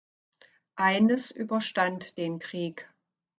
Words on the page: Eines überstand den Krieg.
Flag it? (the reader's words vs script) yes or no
no